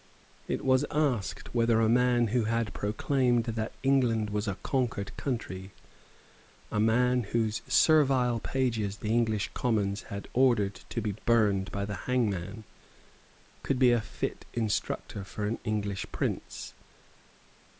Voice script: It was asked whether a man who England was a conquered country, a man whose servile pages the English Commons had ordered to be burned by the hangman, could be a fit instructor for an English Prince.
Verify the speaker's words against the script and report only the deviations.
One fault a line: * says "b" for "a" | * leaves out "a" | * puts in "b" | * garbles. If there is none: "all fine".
* puts in "had proclaimed that"